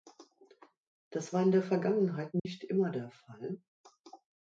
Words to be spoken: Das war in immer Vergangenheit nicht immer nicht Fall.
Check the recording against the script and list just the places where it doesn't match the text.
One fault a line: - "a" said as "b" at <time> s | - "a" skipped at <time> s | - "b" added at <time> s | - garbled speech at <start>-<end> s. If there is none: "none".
- "immer" said as "der" at 1.5 s
- "nicht" said as "der" at 2.9 s